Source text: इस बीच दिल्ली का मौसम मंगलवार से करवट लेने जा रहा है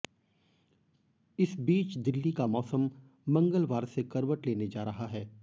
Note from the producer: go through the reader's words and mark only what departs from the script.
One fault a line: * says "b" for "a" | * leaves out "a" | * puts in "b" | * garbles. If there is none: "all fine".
all fine